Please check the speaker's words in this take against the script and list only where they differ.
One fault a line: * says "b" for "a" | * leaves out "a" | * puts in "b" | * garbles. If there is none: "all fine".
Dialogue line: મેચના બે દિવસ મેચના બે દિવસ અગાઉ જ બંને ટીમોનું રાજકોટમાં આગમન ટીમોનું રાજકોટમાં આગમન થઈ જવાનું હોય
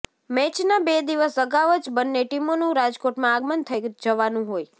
* leaves out "મેચના બે દિવસ"
* leaves out "ટીમોનું રાજકોટમાં આગમન"